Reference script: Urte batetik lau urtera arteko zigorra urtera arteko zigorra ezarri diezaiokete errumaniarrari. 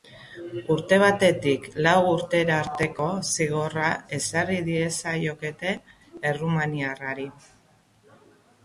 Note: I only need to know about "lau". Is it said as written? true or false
true